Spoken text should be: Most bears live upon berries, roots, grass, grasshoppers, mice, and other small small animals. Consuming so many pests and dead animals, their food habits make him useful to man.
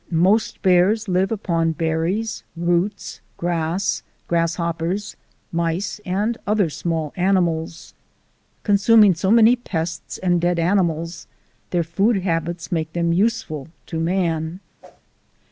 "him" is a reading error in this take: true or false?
true